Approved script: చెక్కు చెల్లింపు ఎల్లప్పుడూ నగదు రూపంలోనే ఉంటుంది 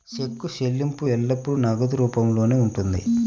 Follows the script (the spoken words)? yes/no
yes